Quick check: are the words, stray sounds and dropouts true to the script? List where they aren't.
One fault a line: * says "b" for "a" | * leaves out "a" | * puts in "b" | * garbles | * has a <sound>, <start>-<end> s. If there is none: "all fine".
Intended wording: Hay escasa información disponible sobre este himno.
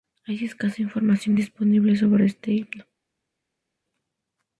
all fine